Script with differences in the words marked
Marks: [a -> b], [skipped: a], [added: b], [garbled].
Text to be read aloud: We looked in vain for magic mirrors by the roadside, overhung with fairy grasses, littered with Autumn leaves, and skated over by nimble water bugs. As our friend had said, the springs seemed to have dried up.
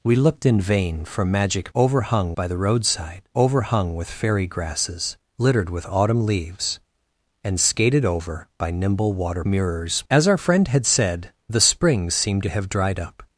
We looked in vain for magic [mirrors -> overhung] by the roadside, overhung with fairy grasses, littered with Autumn leaves, and skated over by nimble water [bugs. -> mirrors] As our friend had said, the springs seemed to have dried up.